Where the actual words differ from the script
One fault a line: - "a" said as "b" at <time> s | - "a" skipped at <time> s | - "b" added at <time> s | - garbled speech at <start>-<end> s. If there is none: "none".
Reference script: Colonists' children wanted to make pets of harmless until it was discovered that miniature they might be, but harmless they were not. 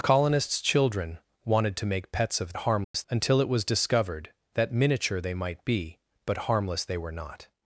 none